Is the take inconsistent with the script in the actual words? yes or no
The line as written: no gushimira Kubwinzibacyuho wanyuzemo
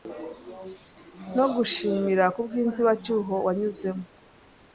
no